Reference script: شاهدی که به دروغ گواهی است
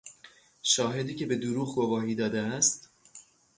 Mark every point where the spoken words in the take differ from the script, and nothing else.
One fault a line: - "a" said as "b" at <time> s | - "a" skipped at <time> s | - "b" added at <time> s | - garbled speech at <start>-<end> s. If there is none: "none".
- "داده" added at 2.1 s